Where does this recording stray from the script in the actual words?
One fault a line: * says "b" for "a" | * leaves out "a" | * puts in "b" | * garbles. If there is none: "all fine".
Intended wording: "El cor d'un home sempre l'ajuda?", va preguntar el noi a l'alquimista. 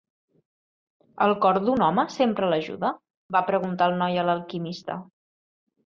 all fine